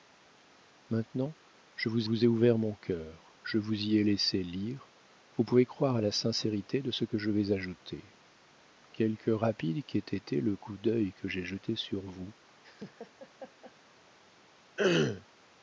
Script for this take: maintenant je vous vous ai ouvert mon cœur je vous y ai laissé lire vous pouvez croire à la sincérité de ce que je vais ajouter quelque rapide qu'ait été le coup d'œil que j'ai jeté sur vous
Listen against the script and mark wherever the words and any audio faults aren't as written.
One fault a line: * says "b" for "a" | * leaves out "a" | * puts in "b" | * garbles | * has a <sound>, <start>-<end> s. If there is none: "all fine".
* has a laugh, 12.6-13.7 s
* has a throat clearing, 14.8-15.3 s